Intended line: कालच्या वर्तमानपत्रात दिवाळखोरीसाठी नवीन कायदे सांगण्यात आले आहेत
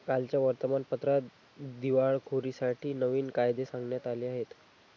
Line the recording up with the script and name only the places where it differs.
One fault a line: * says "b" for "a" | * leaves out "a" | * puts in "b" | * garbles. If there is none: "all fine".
all fine